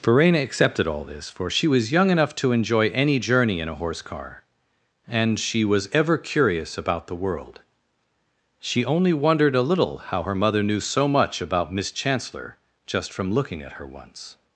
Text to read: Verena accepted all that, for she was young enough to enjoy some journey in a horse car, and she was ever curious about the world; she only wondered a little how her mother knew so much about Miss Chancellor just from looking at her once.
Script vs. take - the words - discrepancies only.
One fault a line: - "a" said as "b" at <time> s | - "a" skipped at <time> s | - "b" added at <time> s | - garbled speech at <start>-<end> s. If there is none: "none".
- "that" said as "this" at 1.0 s
- "some" said as "any" at 2.9 s